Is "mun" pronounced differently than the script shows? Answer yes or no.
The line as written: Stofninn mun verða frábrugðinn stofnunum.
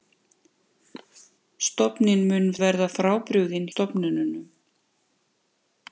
no